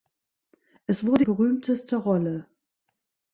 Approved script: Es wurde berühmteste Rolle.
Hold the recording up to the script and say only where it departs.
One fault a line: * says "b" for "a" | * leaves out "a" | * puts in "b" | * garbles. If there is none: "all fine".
all fine